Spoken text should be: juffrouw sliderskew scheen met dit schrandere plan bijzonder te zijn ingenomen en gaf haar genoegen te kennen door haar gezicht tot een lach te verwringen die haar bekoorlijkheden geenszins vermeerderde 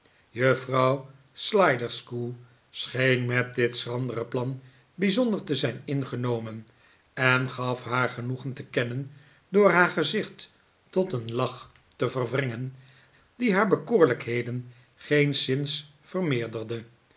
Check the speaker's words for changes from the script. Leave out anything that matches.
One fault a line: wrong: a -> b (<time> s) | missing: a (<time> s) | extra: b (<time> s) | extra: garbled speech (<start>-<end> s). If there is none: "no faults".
no faults